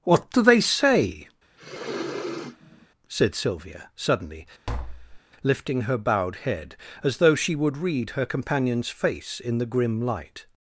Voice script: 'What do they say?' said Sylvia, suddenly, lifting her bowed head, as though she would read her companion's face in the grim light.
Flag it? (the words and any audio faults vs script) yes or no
yes